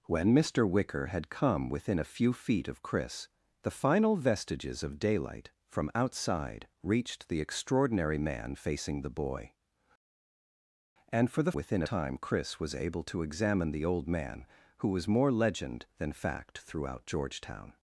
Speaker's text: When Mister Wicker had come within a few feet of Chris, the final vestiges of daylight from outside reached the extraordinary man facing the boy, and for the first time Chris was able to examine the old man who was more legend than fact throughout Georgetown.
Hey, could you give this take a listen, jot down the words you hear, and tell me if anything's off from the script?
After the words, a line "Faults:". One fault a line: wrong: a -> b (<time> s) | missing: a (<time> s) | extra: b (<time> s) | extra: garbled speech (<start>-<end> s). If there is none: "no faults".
When Mister Wicker had come within a few feet of Chris, the final vestiges of daylight from outside reached the extraordinary man facing the boy, and for the within time Chris was able to examine the old man who was more legend than fact throughout Georgetown.
Faults:
wrong: first -> within (11.5 s)